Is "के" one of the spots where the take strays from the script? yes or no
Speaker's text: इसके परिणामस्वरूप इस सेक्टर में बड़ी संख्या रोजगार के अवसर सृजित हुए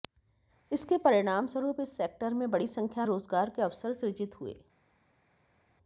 no